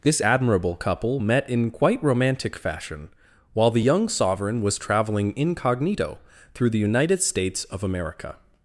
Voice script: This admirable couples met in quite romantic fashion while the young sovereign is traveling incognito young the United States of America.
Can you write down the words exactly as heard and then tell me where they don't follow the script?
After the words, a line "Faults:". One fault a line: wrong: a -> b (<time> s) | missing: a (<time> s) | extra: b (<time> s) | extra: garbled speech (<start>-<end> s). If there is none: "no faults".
This admirable couple met in quite romantic fashion while the young sovereign was traveling incognito through the United States of America.
Faults:
wrong: couples -> couple (0.8 s)
wrong: is -> was (4.6 s)
wrong: young -> through (6.5 s)